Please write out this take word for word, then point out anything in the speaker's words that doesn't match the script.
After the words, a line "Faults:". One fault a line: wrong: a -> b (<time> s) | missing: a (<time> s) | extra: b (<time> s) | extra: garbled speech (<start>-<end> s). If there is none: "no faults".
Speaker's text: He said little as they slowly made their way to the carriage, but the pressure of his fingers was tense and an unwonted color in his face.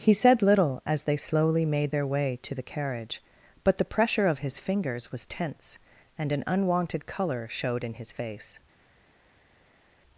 He said little as they slowly made their way to the carriage, but the pressure of his fingers was tense and an unwonted color showed in his face.
Faults:
extra: showed (7.5 s)